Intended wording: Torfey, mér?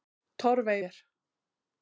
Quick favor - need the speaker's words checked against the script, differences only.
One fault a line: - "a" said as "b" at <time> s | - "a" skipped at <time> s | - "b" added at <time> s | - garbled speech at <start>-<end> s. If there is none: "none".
none